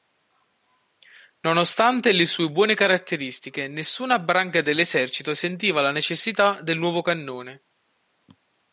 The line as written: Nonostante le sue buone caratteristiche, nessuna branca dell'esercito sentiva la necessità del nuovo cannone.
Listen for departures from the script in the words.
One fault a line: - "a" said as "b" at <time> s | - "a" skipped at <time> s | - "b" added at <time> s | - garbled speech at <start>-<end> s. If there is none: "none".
none